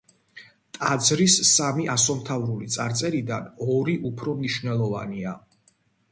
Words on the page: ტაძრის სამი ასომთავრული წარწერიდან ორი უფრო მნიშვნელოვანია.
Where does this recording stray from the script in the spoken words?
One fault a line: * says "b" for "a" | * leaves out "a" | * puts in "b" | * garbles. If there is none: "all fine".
all fine